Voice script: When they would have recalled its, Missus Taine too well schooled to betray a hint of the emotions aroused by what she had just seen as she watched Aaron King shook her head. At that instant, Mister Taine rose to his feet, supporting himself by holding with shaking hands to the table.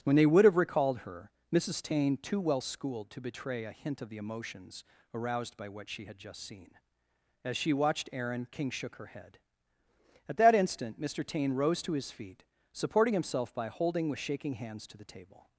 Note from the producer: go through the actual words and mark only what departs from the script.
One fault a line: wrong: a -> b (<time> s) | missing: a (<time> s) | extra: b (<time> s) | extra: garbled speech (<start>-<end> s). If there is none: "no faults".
wrong: its -> her (1.0 s)